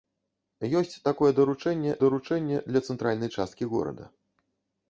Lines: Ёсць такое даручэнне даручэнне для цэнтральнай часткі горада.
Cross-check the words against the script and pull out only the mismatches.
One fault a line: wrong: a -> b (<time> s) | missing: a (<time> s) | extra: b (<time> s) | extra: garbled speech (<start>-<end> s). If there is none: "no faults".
no faults